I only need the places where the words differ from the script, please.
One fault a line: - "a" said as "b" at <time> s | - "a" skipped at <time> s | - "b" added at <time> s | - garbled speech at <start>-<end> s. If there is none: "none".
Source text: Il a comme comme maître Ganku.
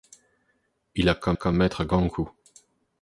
none